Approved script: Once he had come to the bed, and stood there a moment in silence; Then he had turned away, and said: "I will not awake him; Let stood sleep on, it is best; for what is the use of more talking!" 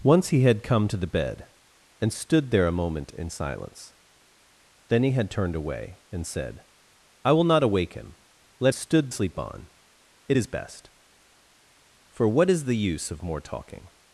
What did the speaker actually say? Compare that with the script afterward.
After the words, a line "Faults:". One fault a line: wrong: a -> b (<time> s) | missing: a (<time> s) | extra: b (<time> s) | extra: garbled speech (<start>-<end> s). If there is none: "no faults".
Once he had come to the bed, and stood there a moment in silence; Then he had turned away, and said: "I will not awake him; Let stood sleep on, it is best; for what is the use of more talking!"
Faults:
no faults